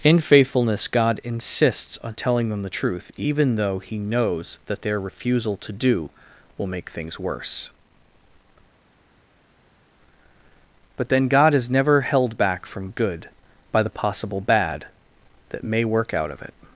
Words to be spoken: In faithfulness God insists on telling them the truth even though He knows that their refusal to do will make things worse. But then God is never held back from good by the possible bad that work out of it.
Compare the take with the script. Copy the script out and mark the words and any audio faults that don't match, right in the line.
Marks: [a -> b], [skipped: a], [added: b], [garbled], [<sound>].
In faithfulness God insists on telling them the truth even though He knows that their refusal to do will make things worse. But then God is never held back from good by the possible bad that [added: may] work out of it.